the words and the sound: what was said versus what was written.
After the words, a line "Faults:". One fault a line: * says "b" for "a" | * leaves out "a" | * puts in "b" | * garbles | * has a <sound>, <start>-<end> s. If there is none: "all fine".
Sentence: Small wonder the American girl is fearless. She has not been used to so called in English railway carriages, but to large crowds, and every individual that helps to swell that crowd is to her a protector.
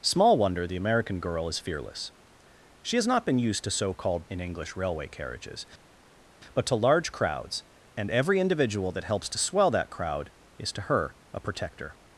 Small wonder the American girl is fearless. She has not been used to so called in English railway carriages, but to large crowds, and every individual that helps to swell that crowd is to her a protector.
Faults:
all fine